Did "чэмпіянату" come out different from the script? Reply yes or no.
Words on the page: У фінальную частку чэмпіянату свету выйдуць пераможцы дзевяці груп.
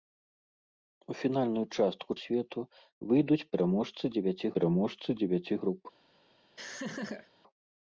yes